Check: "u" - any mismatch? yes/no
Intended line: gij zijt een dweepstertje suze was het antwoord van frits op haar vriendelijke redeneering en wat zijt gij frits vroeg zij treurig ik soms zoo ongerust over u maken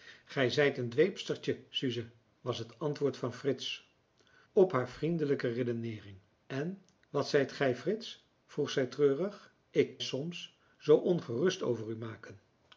no